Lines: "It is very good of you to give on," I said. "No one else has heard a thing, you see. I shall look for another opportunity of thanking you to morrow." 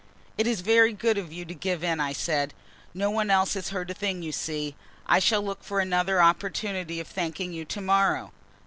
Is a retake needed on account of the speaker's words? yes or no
yes